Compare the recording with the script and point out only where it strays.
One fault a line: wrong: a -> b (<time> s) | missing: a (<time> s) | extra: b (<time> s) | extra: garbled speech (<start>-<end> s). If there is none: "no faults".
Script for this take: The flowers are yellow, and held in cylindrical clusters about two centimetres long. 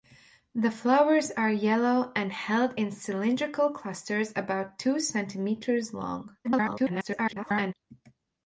extra: garbled speech (6.4-7.7 s)